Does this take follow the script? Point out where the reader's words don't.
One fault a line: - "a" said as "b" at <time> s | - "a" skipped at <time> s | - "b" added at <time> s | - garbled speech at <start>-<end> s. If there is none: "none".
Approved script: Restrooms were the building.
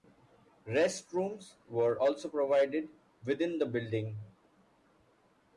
- "also provided within" added at 2.0 s